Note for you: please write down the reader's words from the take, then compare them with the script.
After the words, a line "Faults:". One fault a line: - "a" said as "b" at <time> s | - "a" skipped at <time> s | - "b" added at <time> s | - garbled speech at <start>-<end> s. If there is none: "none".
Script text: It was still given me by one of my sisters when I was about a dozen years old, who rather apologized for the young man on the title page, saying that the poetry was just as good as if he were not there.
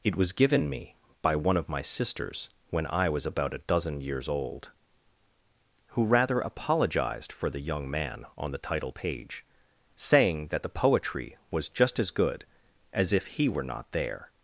It was given me by one of my sisters when I was about a dozen years old, who rather apologized for the young man on the title page, saying that the poetry was just as good as if he were not there.
Faults:
- "still" skipped at 0.3 s